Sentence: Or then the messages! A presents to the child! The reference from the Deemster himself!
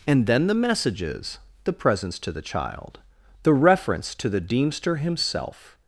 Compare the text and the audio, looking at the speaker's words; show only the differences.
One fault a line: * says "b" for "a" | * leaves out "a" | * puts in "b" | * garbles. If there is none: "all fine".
* says "And" for "Or"
* says "The" for "A"
* says "to" for "from"